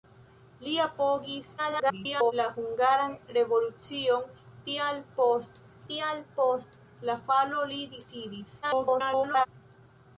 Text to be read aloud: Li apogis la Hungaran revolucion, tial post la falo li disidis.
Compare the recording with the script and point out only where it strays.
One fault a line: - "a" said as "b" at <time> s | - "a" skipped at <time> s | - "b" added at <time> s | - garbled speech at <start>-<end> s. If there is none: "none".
- garbled speech at 1.6-2.3 s
- "tial post" added at 5.9 s
- garbled speech at 8.6-9.5 s